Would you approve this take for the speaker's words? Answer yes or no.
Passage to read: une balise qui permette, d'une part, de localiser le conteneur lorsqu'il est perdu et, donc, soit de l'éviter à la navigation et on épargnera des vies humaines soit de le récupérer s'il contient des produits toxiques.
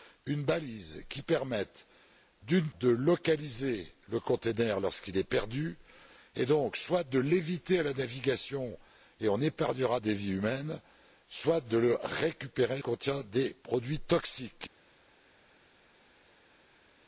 no